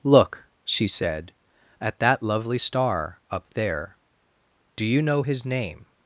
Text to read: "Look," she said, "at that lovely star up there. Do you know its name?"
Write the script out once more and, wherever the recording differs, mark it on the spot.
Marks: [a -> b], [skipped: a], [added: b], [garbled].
"Look," she said, "at that lovely star up there. Do you know [its -> his] name?"